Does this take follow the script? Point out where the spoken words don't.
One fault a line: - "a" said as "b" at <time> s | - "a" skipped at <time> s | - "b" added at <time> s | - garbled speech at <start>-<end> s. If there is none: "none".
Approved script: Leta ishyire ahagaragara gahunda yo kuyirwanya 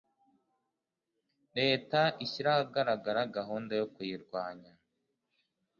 none